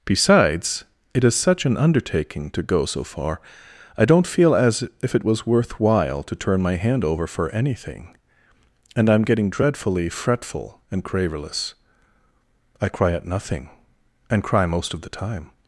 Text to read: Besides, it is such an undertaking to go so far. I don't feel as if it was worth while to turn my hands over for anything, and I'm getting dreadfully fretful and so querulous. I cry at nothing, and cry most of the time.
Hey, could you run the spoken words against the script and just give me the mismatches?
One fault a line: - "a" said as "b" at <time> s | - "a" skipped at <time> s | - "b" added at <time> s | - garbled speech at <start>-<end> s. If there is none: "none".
- "hands" said as "hand" at 6.7 s
- "so" skipped at 11.0 s